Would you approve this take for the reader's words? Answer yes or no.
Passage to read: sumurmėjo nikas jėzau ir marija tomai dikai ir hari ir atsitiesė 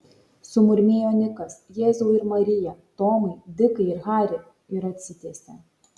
yes